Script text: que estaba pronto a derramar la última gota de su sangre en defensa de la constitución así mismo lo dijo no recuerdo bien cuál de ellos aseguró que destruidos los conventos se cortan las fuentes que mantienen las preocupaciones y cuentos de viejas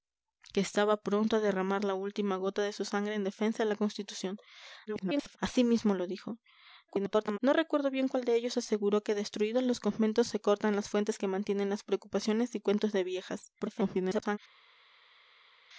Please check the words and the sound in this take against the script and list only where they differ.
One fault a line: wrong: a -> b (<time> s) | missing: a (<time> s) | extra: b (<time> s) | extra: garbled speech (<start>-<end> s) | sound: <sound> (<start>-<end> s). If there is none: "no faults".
extra: garbled speech (4.9-5.4 s)
extra: garbled speech (6.9-7.4 s)
extra: garbled speech (13.6-14.4 s)